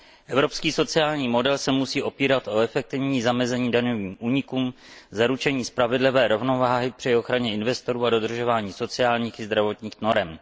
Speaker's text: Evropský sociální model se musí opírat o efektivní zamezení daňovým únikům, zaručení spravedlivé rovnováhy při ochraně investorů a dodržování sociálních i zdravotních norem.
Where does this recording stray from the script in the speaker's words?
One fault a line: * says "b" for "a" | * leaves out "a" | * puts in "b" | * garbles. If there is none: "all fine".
all fine